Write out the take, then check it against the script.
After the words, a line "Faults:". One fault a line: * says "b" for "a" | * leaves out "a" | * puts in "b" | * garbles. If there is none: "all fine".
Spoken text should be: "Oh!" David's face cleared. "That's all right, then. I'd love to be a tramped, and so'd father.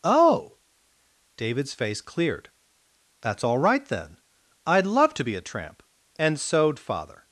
"Oh!" David's face cleared. "That's all right, then. I'd love to be a tramp, and so'd father.
Faults:
* says "tramp" for "tramped"